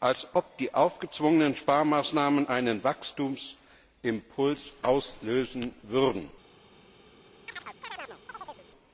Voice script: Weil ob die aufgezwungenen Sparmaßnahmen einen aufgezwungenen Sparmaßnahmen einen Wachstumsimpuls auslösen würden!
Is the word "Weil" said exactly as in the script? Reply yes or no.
no